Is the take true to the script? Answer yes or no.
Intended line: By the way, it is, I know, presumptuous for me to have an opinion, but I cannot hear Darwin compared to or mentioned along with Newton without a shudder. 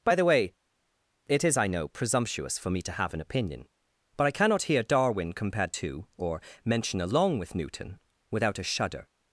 no